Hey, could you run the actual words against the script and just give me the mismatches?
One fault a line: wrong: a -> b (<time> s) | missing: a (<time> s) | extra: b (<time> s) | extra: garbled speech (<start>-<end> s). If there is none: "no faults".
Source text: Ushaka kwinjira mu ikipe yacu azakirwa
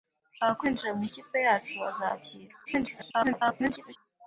extra: garbled speech (2.7-4.0 s)